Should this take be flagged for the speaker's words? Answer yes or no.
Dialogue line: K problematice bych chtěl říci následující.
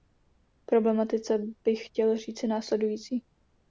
no